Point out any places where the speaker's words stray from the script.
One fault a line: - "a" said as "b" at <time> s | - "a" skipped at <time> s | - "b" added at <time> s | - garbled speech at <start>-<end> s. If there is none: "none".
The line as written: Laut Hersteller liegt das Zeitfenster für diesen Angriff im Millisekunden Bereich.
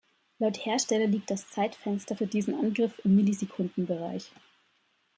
none